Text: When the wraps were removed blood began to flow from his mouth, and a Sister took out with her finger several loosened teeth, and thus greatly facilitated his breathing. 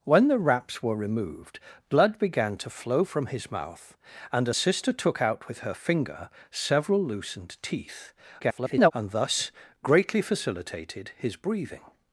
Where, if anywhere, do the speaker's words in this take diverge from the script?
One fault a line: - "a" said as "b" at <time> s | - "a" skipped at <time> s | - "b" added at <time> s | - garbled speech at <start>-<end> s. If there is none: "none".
- garbled speech at 8.4-8.9 s